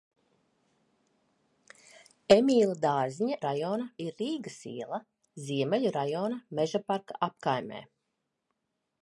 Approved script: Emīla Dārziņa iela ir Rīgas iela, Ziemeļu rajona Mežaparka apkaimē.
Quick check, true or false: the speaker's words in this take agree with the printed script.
false